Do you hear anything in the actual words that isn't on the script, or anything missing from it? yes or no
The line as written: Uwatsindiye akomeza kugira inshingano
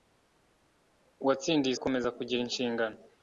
no